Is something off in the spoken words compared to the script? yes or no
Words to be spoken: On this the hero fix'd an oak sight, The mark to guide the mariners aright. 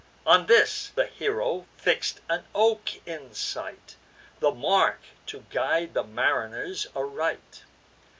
yes